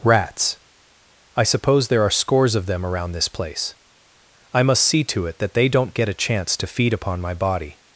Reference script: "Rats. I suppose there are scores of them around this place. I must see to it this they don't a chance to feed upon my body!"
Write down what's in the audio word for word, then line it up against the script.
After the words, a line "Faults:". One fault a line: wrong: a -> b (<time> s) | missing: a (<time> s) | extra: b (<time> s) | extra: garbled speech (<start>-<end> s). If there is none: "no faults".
"Rats. I suppose there are scores of them around this place. I must see to it that they don't get a chance to feed upon my body!"
Faults:
wrong: this -> that (5.4 s)
extra: get (5.9 s)